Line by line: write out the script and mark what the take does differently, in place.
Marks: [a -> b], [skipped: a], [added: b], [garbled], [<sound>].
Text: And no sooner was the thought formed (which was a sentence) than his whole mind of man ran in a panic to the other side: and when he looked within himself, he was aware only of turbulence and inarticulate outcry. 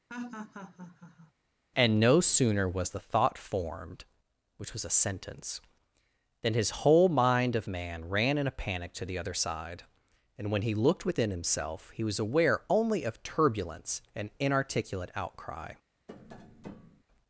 [laugh] And no sooner was the thought formed (which was a sentence) than his whole mind of man ran in a panic to the other side: and when he looked within himself, he was aware only of turbulence and inarticulate outcry. [tap]